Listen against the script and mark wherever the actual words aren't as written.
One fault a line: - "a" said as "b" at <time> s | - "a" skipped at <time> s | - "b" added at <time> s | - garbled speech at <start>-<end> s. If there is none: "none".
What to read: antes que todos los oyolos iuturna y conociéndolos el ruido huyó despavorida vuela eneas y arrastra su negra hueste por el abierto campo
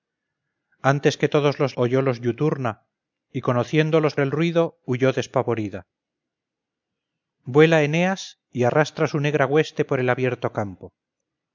none